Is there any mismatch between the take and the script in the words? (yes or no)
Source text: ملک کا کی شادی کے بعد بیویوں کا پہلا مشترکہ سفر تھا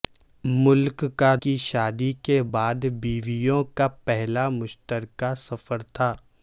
no